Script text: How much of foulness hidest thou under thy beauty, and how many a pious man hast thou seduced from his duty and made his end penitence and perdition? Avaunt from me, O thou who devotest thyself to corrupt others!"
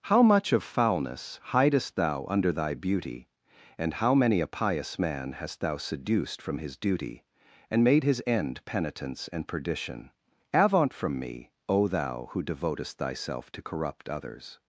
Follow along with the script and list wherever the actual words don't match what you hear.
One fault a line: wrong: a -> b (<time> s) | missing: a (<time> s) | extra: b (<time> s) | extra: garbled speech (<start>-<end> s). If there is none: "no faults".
no faults